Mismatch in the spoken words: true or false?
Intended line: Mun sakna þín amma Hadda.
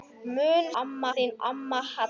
true